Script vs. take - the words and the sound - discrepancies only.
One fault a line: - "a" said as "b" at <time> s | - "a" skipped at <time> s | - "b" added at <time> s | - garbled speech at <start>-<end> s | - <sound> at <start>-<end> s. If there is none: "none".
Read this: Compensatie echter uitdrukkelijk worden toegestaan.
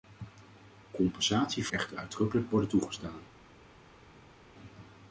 none